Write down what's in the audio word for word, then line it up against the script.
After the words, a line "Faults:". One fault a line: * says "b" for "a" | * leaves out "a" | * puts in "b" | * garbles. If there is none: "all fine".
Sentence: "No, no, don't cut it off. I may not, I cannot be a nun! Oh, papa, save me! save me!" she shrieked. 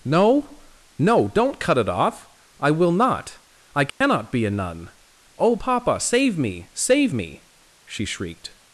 "No, no, don't cut it off. I will not, I cannot be a nun! Oh, papa, save me! save me!" she shrieked.
Faults:
* says "will" for "may"